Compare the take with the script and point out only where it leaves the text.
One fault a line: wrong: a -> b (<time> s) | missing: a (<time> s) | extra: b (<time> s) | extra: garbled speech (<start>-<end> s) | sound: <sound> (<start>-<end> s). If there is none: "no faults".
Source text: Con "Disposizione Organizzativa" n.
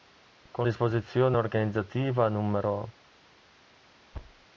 sound: thud (4.1-4.5 s)